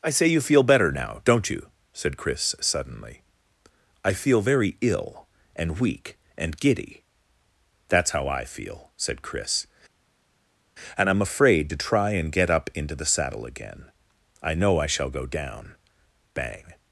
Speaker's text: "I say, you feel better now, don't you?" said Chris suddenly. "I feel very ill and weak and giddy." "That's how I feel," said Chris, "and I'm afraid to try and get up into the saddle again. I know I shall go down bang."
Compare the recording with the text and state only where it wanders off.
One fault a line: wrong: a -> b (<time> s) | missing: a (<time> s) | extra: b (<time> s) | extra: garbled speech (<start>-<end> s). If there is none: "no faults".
no faults